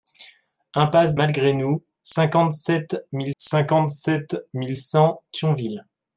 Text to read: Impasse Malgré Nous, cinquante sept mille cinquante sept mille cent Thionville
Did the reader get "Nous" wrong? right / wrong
right